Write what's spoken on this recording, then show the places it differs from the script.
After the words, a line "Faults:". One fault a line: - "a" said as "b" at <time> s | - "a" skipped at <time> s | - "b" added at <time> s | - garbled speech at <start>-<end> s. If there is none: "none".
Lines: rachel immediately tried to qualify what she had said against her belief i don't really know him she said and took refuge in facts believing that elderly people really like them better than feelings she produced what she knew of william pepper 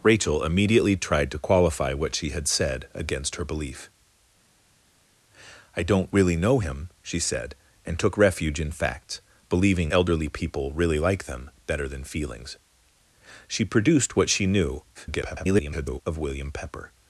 rachel immediately tried to qualify what she had said against her belief i don't really know him she said and took refuge in facts believing elderly people really like them better than feelings she produced what she knew [garbled] of william pepper
Faults:
- "that" skipped at 9.9 s
- garbled speech at 14.9-16.0 s